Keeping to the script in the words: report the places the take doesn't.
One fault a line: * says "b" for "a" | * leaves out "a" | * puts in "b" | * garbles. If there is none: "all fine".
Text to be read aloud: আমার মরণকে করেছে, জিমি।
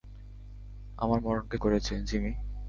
all fine